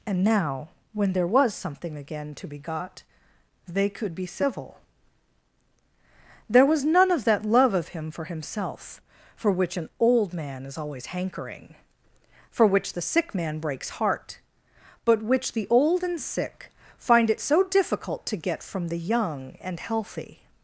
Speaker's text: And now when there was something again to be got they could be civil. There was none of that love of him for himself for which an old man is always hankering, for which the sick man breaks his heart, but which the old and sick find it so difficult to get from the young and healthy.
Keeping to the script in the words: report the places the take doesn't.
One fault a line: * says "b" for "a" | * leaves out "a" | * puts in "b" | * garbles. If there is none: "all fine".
* leaves out "his"